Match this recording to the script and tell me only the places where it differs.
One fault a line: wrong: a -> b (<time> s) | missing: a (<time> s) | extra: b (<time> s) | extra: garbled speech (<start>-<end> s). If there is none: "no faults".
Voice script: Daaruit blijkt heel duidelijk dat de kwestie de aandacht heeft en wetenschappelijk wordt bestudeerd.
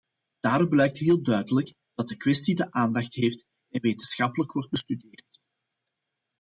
no faults